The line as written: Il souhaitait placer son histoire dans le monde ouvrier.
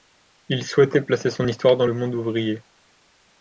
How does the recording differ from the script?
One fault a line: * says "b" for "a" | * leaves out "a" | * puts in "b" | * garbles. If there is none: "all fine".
all fine